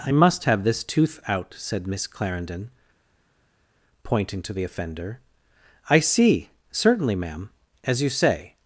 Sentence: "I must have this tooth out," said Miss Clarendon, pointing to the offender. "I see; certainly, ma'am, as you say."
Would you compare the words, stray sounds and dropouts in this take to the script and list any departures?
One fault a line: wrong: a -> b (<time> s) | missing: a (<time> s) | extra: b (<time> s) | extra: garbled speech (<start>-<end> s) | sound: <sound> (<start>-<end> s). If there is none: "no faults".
no faults